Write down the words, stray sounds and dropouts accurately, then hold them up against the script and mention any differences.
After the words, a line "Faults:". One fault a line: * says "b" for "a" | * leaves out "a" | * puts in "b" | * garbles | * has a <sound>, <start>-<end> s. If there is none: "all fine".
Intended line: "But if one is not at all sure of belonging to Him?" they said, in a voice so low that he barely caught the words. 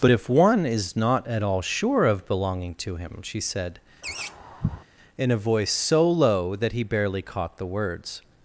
"But if one is not at all sure of belonging to Him?" she said, in a voice so low that he barely caught the words.
Faults:
* says "she" for "they"
* has a laugh, 4.0-4.8 s